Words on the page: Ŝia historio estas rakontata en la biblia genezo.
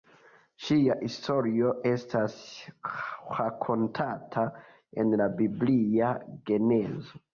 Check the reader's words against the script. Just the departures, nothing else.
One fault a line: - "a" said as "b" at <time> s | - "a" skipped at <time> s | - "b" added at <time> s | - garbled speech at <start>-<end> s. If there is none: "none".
none